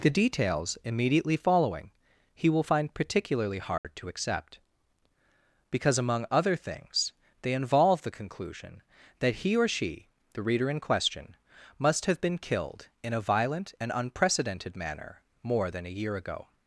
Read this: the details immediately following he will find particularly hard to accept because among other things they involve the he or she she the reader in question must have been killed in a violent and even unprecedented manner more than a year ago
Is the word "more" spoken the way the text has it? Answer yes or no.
yes